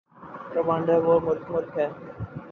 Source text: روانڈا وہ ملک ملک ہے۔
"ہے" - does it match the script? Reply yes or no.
yes